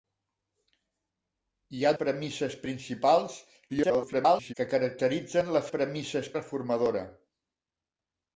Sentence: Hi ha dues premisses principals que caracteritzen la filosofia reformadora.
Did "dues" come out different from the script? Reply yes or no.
yes